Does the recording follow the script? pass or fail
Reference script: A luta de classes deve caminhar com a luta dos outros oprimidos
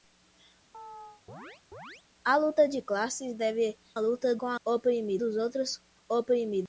fail